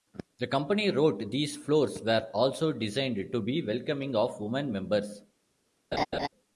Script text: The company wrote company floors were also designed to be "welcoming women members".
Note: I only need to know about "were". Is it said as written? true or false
true